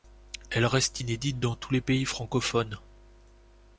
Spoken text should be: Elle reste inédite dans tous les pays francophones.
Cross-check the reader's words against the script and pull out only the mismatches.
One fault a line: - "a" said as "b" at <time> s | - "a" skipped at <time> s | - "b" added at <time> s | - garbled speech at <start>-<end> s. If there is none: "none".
none